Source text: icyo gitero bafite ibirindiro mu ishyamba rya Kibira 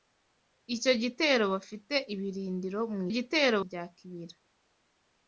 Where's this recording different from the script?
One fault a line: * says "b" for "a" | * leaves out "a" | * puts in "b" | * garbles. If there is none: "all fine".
* says "gitero" for "ishyamba"